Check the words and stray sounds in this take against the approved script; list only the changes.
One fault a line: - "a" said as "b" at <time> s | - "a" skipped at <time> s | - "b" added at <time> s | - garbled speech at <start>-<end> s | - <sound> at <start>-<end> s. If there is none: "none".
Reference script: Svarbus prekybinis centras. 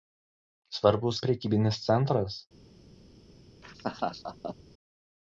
- laugh at 3.6-4.6 s